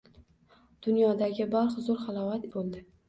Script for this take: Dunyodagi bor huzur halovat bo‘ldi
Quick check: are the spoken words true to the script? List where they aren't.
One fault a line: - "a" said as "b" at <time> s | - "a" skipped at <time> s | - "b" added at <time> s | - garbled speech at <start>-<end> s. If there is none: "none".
none